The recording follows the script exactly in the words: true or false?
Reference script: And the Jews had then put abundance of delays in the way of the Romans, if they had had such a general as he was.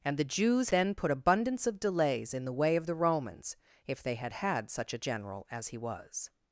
false